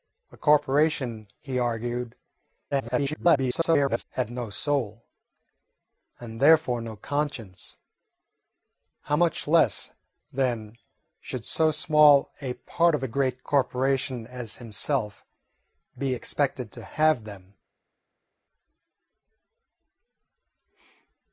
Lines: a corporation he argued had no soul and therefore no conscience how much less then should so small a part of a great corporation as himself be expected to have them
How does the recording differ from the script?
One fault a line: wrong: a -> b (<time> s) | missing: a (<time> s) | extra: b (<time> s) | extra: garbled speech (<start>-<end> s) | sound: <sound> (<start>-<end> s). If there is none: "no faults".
extra: garbled speech (2.7-4.0 s)